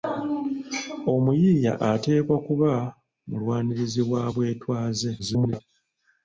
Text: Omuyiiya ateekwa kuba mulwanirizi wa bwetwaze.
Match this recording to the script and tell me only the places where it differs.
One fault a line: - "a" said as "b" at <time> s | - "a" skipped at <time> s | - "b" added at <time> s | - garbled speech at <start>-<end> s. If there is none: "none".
- garbled speech at 5.2-5.6 s